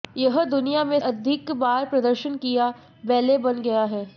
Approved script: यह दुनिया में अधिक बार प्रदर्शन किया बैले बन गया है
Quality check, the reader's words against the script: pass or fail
pass